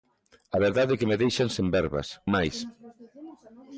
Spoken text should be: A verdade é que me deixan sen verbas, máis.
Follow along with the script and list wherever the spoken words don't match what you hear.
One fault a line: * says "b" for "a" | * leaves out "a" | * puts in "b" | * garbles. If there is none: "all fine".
all fine